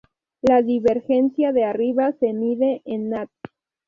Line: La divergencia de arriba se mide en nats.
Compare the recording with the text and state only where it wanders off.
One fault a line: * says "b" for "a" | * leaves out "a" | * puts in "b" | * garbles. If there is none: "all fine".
all fine